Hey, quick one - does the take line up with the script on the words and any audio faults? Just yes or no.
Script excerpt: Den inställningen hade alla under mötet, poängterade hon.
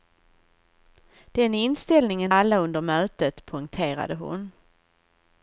no